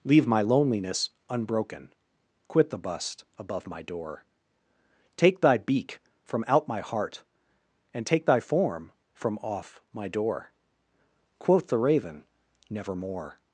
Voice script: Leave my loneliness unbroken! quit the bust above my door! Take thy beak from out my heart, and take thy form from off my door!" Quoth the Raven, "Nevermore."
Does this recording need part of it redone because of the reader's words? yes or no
no